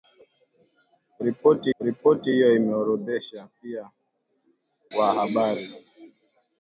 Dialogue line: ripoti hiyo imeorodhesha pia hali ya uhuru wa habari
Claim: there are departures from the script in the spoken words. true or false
true